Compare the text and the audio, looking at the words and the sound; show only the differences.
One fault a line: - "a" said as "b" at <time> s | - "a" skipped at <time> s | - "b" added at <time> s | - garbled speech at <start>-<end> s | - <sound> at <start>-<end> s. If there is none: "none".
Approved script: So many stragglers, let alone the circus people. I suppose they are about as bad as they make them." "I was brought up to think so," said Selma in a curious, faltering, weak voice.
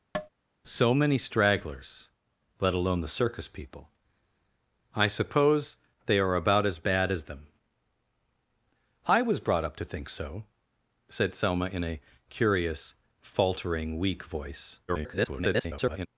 - tap at 0.1-0.3 s
- "they make" skipped at 7.2 s
- garbled speech at 14.9-16.1 s